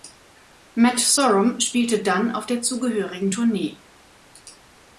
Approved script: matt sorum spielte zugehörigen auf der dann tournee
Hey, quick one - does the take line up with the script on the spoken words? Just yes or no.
no